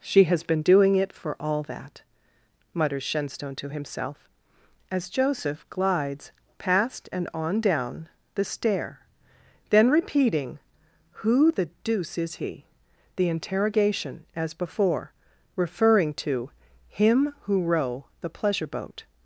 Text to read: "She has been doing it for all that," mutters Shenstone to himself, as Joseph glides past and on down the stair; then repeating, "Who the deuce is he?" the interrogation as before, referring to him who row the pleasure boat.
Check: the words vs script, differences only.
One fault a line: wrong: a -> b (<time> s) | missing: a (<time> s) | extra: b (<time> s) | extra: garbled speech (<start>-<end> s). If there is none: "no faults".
no faults